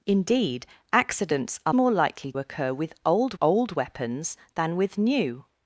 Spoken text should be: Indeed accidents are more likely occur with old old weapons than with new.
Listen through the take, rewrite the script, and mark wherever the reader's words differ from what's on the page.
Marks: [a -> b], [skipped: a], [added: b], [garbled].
Indeed accidents are more likely occur with old old weapons than with new.